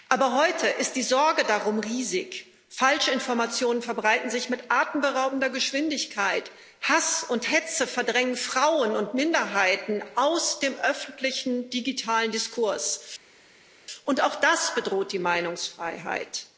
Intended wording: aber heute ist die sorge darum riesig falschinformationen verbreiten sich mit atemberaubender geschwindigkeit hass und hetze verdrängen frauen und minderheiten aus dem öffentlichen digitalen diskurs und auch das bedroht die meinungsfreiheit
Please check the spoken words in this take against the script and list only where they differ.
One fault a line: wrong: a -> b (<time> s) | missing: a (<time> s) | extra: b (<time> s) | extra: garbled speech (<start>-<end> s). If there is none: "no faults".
no faults